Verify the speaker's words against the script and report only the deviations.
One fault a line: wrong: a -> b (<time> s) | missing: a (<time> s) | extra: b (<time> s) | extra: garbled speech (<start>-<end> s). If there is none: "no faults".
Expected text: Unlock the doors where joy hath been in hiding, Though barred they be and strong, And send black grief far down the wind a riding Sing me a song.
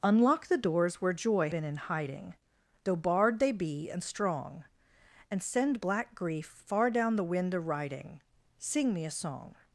missing: hath (1.5 s)